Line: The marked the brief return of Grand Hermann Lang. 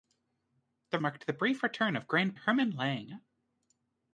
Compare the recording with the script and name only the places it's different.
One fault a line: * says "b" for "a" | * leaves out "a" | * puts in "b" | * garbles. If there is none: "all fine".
all fine